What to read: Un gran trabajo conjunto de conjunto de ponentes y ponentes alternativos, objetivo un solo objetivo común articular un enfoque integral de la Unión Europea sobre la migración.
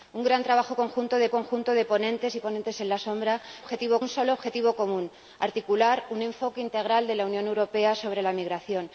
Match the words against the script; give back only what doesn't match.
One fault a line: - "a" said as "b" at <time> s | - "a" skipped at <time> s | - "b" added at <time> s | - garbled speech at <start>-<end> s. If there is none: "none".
none